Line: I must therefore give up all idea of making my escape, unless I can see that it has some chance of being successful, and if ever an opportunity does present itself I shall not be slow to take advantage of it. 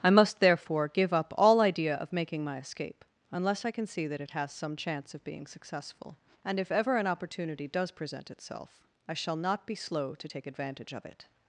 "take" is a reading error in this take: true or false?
false